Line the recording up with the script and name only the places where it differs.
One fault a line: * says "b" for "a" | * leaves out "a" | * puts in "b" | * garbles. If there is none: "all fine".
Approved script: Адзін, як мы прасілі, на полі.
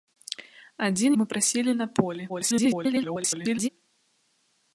* leaves out "як"
* garbles